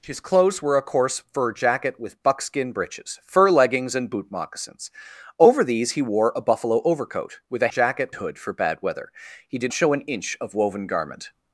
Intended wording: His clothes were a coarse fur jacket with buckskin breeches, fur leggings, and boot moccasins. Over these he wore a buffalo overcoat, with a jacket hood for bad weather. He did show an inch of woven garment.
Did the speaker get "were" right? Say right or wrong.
right